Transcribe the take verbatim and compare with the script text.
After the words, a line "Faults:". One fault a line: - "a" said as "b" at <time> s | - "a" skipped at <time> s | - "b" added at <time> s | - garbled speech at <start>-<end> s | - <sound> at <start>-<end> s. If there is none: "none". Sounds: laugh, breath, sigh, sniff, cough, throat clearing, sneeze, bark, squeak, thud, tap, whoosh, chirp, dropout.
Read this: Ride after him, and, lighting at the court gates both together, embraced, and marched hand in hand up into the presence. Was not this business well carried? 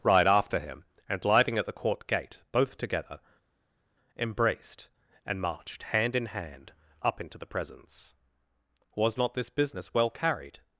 Ride after him, and, lighting at the court gate both together, embraced, and marched hand in hand up into the presence. Was not this business well carried?
Faults:
- "gates" said as "gate" at 2.1 s